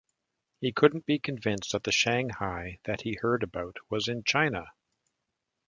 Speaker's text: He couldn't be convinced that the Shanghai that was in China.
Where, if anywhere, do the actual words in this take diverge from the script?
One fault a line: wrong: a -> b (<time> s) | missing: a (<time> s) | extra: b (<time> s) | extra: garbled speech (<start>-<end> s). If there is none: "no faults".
extra: he heard about (3.0 s)